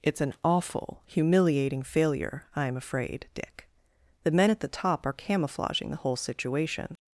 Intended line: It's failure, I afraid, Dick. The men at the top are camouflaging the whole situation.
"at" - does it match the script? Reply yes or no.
yes